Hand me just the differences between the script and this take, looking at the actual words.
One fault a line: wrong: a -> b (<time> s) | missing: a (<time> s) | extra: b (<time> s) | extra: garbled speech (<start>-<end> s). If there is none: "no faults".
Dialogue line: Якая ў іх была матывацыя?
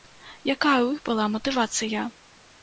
no faults